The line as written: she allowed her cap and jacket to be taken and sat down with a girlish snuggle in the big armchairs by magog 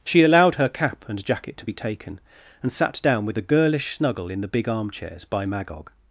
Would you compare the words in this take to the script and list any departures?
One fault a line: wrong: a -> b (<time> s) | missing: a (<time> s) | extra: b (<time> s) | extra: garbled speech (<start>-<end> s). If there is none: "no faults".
no faults